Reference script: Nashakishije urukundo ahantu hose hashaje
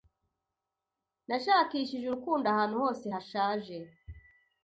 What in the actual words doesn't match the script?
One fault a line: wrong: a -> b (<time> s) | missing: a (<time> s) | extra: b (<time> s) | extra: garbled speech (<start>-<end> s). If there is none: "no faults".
no faults